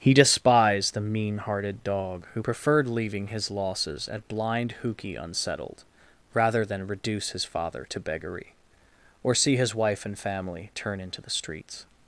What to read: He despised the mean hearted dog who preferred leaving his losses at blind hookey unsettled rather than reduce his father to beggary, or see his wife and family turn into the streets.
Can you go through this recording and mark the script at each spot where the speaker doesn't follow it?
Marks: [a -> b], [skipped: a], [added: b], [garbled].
He despised the mean hearted dog who preferred leaving his losses at blind hookey unsettled rather than reduce his father to beggary, or see his wife and family turn into the streets.